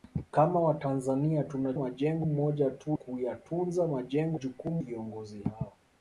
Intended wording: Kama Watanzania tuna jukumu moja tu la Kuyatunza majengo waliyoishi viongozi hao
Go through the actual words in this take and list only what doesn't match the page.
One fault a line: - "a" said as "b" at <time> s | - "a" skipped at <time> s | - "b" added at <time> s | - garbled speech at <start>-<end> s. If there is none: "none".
- "jukumu" said as "majengo" at 1.8 s
- "la" skipped at 3.0 s
- "waliyoishi" said as "jukumu" at 4.3 s